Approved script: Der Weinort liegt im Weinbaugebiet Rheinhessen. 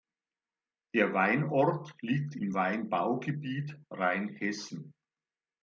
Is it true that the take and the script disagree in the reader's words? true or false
false